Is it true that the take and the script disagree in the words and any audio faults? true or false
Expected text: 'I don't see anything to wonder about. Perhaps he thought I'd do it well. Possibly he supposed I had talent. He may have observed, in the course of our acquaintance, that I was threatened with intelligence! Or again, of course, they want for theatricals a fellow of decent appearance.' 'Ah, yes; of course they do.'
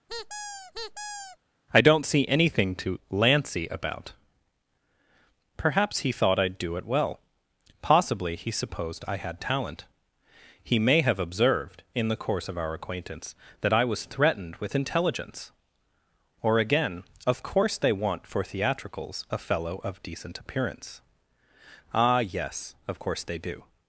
true